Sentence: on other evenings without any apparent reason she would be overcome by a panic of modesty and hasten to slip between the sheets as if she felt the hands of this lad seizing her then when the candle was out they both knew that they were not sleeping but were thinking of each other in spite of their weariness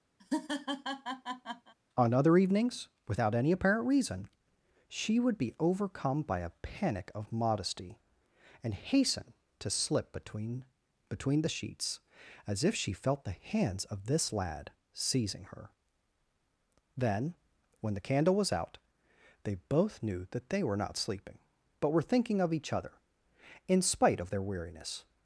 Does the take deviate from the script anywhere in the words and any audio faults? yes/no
yes